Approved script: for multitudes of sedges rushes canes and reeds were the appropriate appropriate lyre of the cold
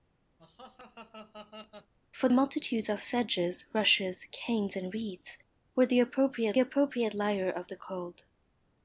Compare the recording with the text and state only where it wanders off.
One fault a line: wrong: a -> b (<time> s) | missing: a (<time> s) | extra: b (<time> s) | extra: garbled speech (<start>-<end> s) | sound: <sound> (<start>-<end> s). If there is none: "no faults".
sound: laugh (0.4-1.9 s)